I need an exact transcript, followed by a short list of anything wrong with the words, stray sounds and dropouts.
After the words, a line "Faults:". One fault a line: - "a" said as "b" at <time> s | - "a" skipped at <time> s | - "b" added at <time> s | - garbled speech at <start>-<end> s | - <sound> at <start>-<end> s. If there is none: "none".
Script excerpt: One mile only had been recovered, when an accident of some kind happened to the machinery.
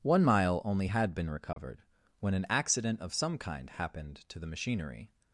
One mile only had been recovered, when an accident of some kind happened to the machinery.
Faults:
- dropout at 1.5-1.6 s